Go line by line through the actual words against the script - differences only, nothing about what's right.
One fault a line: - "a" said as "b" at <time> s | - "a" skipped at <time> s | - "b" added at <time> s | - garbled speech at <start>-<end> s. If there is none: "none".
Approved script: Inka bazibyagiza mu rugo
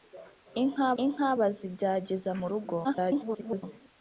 - "inka" added at 1.0 s
- garbled speech at 2.8-3.6 s